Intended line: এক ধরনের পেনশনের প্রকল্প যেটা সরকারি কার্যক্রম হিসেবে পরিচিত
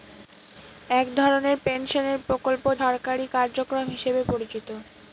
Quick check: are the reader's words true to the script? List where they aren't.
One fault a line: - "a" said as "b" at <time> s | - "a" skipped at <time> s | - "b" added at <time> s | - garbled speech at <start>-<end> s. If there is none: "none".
- "যেটা" skipped at 2.6 s